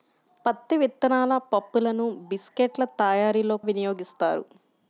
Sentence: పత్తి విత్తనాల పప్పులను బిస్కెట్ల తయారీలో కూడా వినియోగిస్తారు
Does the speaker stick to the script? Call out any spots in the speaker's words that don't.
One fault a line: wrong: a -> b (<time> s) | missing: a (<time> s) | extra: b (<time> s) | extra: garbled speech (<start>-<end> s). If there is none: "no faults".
missing: కూడా (3.6 s)